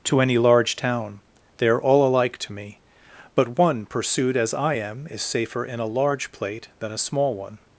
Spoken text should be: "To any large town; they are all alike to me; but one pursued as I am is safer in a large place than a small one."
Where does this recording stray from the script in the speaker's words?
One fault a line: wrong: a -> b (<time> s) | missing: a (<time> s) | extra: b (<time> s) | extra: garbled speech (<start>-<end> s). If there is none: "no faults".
wrong: place -> plate (6.3 s)